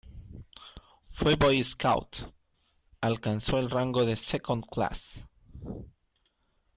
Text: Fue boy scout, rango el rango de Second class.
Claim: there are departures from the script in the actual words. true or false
true